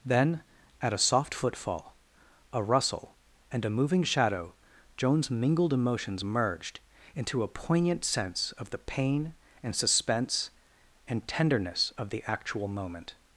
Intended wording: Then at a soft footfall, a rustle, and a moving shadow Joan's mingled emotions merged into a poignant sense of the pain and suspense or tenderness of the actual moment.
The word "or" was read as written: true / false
false